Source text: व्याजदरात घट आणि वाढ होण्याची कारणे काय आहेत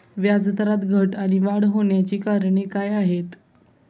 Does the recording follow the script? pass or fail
pass